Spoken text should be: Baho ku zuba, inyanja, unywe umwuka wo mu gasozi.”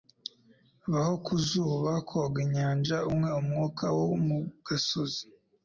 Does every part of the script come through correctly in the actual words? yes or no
no